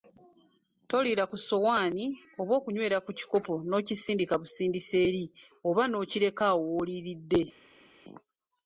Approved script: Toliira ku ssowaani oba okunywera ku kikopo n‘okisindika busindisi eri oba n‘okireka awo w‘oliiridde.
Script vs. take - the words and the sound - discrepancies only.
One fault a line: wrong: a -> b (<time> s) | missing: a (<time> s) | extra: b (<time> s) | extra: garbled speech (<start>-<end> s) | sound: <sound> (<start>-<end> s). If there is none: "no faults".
no faults